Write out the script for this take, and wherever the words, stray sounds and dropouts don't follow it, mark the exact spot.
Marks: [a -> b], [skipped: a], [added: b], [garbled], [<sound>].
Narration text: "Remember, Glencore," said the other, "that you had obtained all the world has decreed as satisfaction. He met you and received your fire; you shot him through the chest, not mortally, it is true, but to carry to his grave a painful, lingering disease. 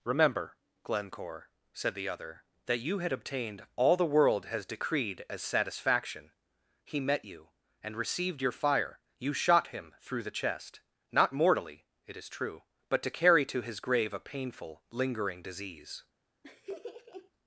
"Remember, Glencore," said the other, "that you had obtained all the world has decreed as satisfaction. He met you and received your fire; you shot him through the chest, not mortally, it is true, but to carry to his grave a painful, lingering disease. [laugh]